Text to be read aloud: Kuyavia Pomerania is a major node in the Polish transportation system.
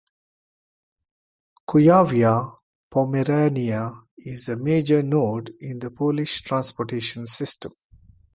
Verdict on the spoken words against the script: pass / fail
pass